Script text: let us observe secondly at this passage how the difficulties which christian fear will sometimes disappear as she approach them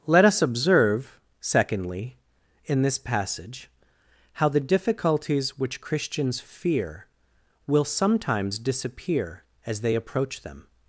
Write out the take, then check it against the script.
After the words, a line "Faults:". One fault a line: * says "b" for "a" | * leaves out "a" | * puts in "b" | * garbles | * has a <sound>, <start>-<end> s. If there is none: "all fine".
let us observe secondly in this passage how the difficulties which christians fear will sometimes disappear as they approach them
Faults:
* says "in" for "at"
* says "christians" for "christian"
* says "they" for "she"